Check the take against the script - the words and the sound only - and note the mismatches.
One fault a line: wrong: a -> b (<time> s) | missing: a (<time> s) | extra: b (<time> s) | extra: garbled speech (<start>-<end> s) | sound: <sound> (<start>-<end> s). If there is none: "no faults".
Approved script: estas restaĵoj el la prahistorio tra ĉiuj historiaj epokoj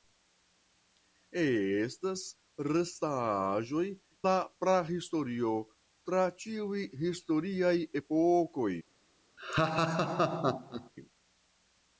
missing: el (3.9 s)
sound: laugh (9.4-10.9 s)